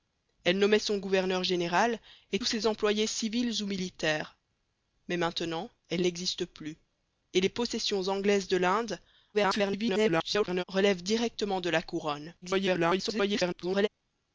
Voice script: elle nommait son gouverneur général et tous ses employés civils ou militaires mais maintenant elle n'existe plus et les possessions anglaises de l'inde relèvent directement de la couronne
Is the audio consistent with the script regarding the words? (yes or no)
no